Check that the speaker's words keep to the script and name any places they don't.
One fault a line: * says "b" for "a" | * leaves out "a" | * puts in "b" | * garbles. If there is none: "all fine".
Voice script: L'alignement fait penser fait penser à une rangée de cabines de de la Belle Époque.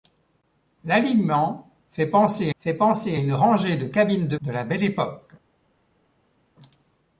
all fine